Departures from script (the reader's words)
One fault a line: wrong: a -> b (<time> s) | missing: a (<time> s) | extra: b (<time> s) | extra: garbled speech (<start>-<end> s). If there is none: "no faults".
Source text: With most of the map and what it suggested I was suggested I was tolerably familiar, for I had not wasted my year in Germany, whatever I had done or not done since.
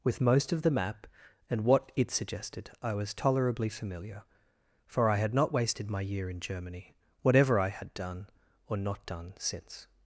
missing: suggested I was (3.1 s)